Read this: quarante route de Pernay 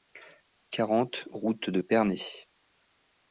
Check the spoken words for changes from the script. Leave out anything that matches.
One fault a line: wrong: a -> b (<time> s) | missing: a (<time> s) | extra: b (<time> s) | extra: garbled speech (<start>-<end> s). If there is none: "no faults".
no faults